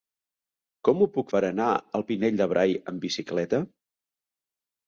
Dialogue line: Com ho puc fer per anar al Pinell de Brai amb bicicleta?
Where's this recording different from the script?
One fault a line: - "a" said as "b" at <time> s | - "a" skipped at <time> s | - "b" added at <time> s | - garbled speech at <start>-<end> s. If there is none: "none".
- "fer" skipped at 1.3 s